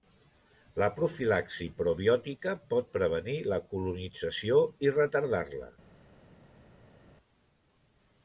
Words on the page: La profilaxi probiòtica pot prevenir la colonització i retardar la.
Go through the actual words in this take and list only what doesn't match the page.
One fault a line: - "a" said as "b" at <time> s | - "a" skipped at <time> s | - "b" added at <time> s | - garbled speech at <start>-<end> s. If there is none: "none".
none